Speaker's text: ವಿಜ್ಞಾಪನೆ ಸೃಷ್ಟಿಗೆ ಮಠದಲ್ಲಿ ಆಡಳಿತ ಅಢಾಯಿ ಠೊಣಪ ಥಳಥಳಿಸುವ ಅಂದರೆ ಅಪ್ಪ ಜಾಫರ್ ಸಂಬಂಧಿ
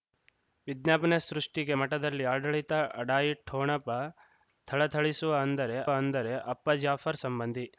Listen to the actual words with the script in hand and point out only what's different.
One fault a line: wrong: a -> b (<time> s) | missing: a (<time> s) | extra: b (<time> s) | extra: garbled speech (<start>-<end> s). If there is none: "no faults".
extra: ಅಂದರೆ (5.9 s)